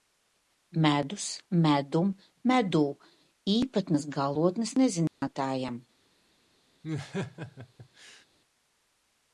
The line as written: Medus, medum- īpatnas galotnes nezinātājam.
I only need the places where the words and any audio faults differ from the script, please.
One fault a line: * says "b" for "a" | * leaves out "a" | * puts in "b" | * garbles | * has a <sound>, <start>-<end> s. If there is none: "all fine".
* puts in "medū"
* has a dropout, 5.1-5.2 s
* has a laugh, 6.8-8.3 s